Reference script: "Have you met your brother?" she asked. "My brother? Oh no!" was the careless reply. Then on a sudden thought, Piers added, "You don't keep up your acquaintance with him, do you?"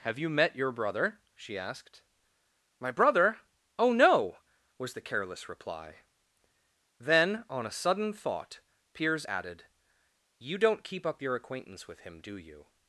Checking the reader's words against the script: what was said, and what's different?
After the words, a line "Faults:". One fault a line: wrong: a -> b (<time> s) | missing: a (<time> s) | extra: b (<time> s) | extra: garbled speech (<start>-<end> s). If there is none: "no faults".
"Have you met your brother?" she asked. "My brother? Oh no!" was the careless reply. Then on a sudden thought, Piers added, "You don't keep up your acquaintance with him, do you?"
Faults:
no faults